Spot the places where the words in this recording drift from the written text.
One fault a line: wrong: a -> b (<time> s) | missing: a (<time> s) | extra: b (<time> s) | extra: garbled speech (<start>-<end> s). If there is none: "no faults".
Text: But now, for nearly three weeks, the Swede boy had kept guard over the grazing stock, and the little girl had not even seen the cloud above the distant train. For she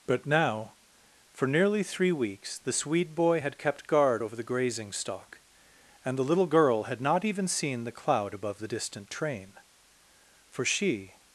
no faults